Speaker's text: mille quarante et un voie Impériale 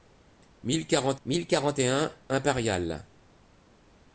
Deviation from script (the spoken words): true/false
true